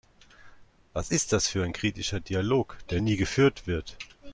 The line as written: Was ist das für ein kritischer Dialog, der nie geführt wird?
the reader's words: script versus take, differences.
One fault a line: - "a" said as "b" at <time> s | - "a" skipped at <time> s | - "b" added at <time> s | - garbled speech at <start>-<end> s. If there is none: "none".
none